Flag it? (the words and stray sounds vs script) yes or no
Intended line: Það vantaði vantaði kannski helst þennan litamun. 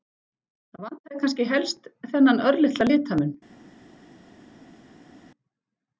yes